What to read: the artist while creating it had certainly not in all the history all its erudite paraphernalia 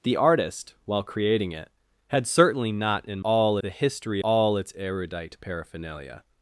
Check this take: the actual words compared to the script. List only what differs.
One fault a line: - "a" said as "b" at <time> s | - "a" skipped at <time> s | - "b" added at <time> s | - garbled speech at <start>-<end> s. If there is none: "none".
none